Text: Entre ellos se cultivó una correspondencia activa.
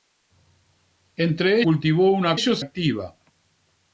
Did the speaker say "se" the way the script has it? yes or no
no